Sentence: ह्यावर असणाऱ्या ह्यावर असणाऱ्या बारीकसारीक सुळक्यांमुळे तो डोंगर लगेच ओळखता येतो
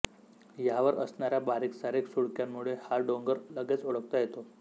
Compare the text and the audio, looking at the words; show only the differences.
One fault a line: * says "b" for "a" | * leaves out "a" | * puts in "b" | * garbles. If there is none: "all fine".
* leaves out "ह्यावर असणाऱ्या"
* says "हा" for "तो"